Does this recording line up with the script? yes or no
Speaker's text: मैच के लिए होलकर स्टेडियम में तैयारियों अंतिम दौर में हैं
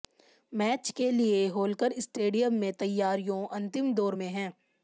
yes